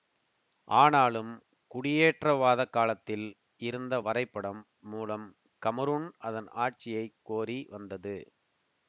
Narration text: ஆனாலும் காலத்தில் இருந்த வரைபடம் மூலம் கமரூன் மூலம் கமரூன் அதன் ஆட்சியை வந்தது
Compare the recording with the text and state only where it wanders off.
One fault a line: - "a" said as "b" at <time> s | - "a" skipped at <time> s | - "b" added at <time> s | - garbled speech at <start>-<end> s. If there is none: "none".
- "குடியேற்றவாதக்" added at 1.7 s
- "மூலம் கமரூன்" skipped at 6.1 s
- "கோரி" added at 7.2 s